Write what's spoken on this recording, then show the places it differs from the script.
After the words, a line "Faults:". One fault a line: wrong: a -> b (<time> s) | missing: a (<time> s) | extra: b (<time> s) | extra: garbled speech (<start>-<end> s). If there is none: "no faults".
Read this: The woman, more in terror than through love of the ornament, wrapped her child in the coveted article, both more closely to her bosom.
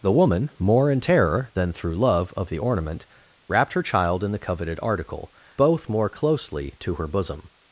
The woman, more in terror than through love of the ornament, wrapped her child in the coveted article, both more closely to her bosom.
Faults:
no faults